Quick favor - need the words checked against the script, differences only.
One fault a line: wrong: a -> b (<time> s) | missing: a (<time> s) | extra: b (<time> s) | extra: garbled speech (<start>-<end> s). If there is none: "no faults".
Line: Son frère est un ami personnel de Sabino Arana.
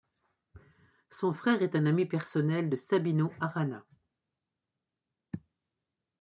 no faults